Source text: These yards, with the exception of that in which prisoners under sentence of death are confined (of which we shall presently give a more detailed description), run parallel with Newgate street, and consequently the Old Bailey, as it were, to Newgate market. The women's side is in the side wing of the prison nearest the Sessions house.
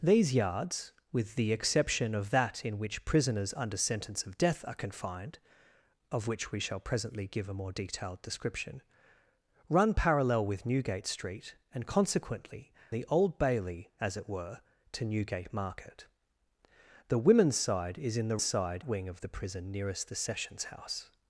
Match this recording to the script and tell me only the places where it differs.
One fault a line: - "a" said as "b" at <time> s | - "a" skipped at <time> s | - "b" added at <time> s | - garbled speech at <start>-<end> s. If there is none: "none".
none